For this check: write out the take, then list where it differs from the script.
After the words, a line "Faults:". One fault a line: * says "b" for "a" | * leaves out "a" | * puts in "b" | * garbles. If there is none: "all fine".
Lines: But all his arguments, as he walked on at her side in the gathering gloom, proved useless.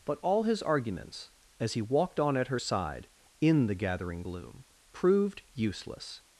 But all his arguments, as he walked on at her side in the gathering gloom, proved useless.
Faults:
all fine